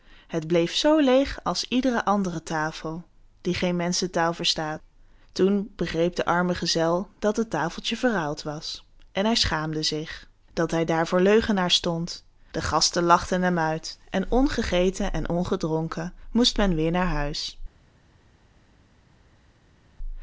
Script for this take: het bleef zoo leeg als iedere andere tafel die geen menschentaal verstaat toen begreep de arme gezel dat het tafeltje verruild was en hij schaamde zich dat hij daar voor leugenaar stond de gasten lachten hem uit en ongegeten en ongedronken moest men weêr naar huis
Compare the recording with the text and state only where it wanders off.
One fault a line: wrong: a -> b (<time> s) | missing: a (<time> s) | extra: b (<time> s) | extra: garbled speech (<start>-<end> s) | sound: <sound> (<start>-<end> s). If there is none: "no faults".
no faults